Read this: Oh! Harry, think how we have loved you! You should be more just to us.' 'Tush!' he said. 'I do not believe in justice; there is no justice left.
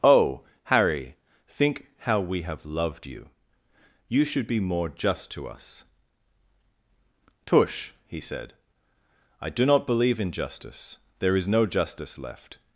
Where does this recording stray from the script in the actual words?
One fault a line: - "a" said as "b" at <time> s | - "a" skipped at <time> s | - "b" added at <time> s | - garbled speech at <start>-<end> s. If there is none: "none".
none